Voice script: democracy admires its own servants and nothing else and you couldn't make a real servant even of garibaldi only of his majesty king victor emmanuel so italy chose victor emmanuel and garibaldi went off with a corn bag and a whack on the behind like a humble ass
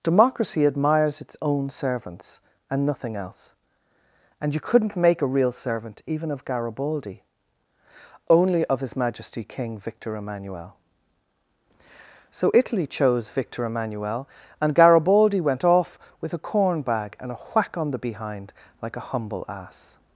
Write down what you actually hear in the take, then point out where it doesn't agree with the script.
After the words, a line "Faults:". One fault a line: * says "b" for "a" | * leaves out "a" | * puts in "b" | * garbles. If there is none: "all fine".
democracy admires its own servants and nothing else and you couldn't make a real servant even of garibaldi only of his majesty king victor emmanuel so italy chose victor emmanuel and garibaldi went off with a corn bag and a whack on the behind like a humble ass
Faults:
all fine